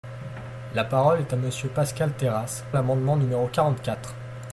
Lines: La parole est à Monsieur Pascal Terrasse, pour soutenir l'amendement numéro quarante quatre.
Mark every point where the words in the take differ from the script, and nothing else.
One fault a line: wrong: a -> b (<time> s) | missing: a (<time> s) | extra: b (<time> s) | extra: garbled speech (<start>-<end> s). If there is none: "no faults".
missing: pour soutenir (2.6 s)